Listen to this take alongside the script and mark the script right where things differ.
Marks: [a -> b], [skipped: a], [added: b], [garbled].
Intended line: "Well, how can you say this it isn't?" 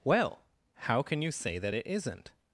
"Well, how can you say [this -> that] it isn't?"